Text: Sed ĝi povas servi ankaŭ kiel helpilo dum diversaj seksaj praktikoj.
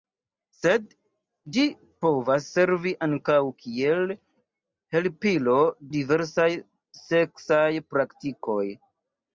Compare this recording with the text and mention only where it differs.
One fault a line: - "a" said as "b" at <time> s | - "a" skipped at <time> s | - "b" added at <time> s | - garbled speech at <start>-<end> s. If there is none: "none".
- "dum" skipped at 5.5 s